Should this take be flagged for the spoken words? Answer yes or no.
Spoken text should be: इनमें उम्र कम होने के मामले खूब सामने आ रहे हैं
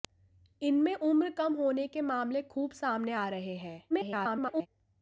yes